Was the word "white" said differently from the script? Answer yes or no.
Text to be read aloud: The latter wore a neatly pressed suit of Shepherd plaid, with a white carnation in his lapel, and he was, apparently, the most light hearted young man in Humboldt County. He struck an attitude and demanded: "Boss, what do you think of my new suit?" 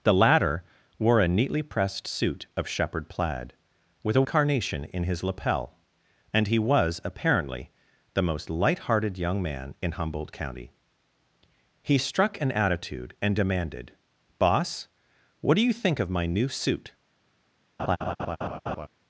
yes